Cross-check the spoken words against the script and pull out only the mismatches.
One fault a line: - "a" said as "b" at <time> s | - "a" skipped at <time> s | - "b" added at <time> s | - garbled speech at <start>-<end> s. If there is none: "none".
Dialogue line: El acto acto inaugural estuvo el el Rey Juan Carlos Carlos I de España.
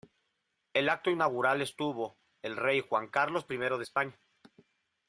- "acto" skipped at 1.1 s
- "el" skipped at 2.6 s
- "Carlos" skipped at 3.5 s